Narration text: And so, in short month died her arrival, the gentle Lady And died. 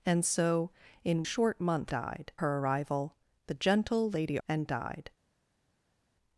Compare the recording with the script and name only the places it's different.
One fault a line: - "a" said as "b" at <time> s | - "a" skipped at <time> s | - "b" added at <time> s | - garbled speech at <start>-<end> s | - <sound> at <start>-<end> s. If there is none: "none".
none